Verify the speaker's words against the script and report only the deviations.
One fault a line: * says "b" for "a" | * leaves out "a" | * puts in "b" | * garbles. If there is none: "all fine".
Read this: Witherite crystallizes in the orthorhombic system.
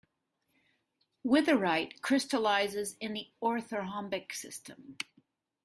all fine